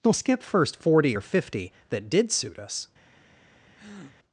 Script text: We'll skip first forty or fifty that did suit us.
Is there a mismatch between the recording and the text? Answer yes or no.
no